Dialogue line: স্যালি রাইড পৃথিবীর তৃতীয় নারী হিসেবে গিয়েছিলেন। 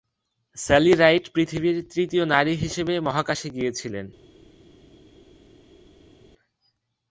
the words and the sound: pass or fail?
fail